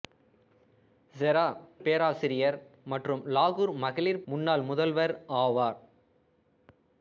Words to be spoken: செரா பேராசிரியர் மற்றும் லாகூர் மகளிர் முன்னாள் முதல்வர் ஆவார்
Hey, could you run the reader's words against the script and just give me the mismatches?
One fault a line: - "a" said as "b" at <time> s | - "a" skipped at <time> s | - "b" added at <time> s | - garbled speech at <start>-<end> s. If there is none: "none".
none